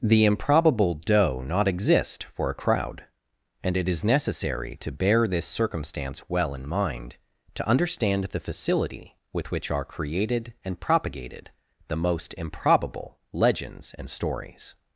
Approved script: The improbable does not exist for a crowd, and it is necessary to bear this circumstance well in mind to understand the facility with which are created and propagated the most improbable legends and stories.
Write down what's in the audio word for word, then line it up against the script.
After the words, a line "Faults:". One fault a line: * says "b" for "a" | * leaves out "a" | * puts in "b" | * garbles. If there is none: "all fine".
The improbable doe not exist for a crowd, and it is necessary to bear this circumstance well in mind to understand the facility with which are created and propagated the most improbable legends and stories.
Faults:
* says "doe" for "does"